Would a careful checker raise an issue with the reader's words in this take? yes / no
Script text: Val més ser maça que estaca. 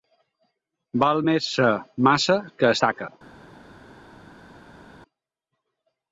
no